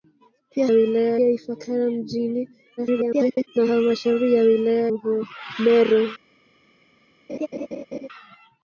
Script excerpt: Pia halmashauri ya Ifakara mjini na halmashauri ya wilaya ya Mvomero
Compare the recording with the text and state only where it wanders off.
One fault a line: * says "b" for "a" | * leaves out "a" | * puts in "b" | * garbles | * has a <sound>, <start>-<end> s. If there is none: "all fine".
* says "wilaya" for "halmashauri"
* garbles
* leaves out "ya"
* has a laugh, 7.3-8.1 s